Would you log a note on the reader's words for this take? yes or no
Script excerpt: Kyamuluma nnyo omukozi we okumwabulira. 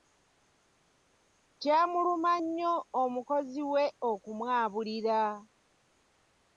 no